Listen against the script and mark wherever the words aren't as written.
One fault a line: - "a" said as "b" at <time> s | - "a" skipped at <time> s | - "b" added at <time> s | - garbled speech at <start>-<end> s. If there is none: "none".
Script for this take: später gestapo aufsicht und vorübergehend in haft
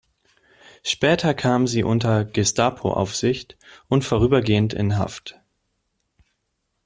- "kam sie unter" added at 1.4 s